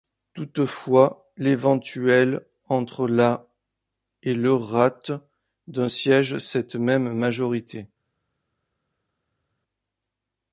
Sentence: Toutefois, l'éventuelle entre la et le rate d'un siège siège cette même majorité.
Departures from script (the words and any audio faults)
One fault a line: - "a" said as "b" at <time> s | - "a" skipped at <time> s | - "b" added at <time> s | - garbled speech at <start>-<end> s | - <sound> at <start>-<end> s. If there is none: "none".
- "siège" skipped at 6.4 s